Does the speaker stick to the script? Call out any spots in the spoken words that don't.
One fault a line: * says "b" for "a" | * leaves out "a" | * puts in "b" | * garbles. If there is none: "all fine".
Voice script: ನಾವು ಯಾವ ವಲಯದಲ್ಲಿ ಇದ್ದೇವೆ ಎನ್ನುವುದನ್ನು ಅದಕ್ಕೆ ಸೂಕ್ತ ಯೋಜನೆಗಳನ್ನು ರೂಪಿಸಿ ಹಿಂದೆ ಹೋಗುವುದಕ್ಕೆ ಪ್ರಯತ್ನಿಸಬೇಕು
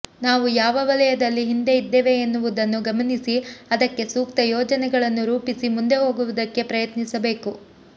* puts in "ಹಿಂದೆ"
* puts in "ಗಮನಿಸಿ"
* says "ಮುಂದೆ" for "ಹಿಂದೆ"